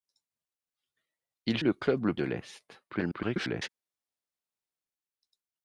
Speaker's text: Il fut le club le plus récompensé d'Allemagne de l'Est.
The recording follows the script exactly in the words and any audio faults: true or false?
false